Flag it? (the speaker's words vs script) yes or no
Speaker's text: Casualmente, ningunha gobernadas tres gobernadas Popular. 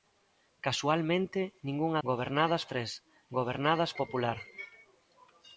no